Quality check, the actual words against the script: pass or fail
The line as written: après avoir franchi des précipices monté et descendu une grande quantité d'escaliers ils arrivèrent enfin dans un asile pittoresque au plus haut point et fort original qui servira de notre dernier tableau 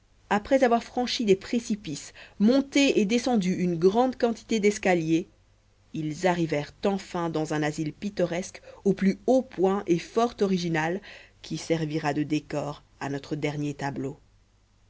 fail